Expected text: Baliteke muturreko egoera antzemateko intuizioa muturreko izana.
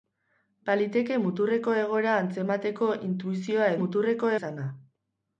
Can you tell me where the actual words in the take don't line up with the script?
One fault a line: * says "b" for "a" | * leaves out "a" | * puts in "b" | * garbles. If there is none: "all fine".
all fine